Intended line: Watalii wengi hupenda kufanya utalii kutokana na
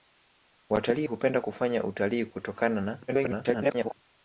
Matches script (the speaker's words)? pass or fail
fail